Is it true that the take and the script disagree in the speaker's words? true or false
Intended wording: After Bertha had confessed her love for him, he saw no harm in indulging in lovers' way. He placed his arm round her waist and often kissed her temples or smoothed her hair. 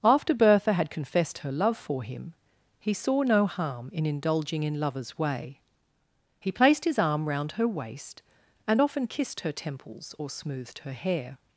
false